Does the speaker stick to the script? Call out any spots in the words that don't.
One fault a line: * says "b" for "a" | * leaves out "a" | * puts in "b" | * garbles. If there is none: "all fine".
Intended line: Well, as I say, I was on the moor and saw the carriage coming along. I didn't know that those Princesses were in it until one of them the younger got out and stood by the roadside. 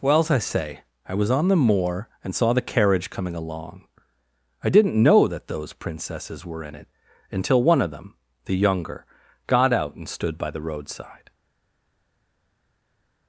all fine